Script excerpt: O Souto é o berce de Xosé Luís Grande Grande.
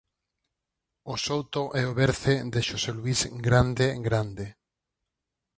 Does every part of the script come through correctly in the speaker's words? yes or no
yes